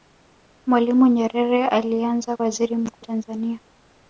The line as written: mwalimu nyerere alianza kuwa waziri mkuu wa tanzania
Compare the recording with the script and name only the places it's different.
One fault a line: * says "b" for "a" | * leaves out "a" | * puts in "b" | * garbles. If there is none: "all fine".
* leaves out "kuwa"
* leaves out "wa"